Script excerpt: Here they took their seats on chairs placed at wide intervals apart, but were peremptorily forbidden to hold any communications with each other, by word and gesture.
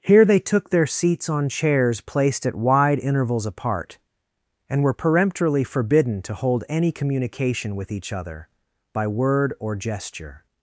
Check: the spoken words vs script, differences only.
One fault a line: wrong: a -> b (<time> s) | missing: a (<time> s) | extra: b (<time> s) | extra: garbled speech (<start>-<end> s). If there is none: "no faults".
wrong: but -> and (4.7 s)
wrong: communications -> communication (6.9 s)
wrong: and -> or (9.6 s)